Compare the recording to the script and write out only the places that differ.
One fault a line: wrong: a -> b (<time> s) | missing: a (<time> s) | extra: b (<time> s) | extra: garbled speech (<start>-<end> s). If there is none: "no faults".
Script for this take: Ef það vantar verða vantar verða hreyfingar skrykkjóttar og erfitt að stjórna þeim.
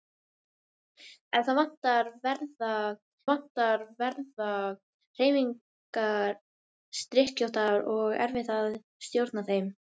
no faults